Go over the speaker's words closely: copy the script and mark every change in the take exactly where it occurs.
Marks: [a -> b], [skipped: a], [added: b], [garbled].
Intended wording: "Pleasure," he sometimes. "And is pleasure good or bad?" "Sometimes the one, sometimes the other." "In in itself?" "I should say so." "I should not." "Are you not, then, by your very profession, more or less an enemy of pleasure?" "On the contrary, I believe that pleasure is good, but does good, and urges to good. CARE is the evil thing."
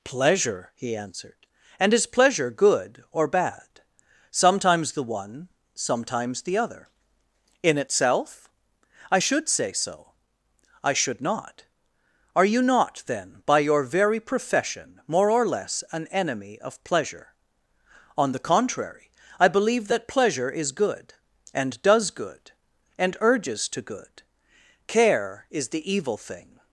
"Pleasure," he [sometimes. -> answered] "And is pleasure good or bad?" "Sometimes the one, sometimes the other." "In [skipped: in] itself?" "I should say so." "I should not." "Are you not, then, by your very profession, more or less an enemy of pleasure?" "On the contrary, I believe that pleasure is good, [but -> and] does good, and urges to good. CARE is the evil thing."